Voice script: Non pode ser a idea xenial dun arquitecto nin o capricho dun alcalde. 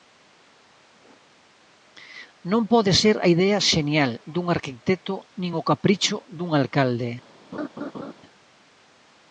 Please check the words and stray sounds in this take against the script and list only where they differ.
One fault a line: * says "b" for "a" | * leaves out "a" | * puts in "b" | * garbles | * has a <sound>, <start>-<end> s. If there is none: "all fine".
* has a laugh, 7.5-8.1 s